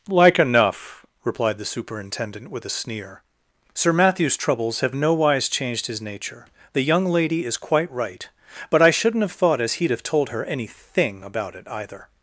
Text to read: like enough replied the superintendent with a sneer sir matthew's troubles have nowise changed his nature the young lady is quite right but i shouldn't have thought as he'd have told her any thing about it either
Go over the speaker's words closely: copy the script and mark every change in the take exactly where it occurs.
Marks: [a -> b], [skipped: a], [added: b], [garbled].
like enough replied the superintendent with a sneer sir matthew's troubles have nowise changed his nature the young lady is quite right but i shouldn't have thought as he'd have told her any thing about it either